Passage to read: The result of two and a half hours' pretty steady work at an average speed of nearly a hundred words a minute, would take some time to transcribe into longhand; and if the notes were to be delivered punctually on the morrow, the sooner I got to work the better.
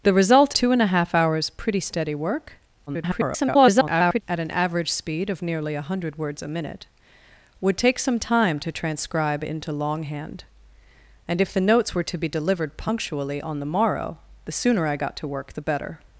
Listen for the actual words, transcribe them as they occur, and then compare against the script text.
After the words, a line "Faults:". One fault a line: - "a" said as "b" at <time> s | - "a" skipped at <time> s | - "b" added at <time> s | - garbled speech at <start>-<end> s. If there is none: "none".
The result two and a half hours' pretty steady work [garbled] at an average speed of nearly a hundred words a minute, would take some time to transcribe into longhand; and if the notes were to be delivered punctually on the morrow, the sooner I got to work the better.
Faults:
- "of" skipped at 0.6 s
- garbled speech at 2.9-4.2 s